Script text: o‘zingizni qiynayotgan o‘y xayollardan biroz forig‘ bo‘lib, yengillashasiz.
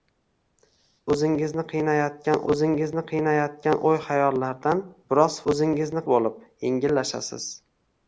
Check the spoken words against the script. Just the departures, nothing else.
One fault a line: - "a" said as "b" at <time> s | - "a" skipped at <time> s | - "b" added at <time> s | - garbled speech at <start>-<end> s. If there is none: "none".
- "o‘zingizni qiynayotgan" added at 2.5 s
- "forig" said as "o‘zingizni" at 5.5 s